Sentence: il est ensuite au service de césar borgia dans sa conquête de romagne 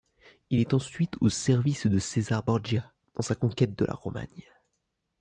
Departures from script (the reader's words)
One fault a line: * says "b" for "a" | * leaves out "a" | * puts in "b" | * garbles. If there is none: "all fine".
* puts in "la"